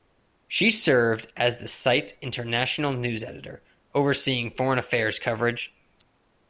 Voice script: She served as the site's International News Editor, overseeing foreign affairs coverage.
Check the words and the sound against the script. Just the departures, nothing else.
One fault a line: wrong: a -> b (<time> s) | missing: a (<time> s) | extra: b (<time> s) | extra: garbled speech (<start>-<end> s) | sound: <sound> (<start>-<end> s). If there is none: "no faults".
no faults